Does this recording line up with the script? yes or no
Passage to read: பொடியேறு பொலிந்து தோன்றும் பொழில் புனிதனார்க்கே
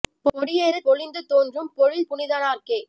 yes